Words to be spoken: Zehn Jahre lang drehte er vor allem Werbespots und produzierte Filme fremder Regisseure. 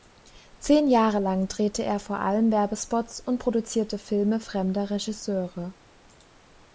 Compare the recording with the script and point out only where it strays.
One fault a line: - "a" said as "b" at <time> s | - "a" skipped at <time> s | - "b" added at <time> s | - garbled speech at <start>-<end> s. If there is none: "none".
none